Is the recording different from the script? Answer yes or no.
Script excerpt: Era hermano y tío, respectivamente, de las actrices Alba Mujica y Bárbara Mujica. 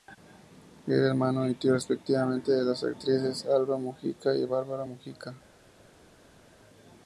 no